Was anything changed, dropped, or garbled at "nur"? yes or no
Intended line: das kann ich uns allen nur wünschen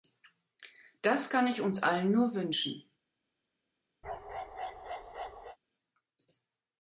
no